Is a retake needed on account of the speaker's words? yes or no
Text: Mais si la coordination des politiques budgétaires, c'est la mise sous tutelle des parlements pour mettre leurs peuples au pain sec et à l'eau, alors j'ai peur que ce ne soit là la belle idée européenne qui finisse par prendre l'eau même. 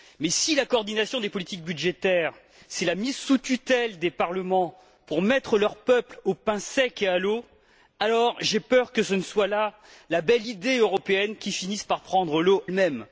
no